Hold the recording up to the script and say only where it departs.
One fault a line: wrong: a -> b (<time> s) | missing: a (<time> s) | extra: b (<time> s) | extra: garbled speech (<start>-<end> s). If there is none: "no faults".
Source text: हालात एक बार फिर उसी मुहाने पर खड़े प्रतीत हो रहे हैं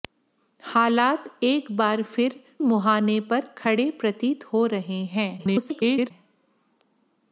missing: उसी (2.4 s)
extra: garbled speech (5.4-6.1 s)